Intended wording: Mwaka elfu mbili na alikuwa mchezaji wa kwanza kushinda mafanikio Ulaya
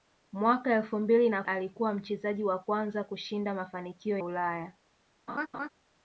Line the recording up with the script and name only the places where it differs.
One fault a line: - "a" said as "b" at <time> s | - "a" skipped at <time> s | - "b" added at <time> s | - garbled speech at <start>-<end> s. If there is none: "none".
none